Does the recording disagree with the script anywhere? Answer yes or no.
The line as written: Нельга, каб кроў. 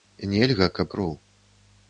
no